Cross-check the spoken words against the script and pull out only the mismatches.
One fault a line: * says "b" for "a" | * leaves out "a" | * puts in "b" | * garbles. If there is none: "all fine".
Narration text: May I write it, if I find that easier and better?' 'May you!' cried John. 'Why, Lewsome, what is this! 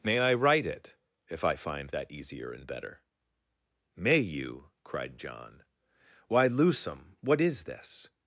all fine